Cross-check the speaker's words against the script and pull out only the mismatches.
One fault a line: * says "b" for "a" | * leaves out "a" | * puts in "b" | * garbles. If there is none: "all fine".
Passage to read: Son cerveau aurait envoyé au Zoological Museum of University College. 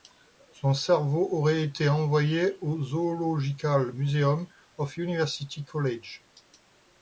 * puts in "été"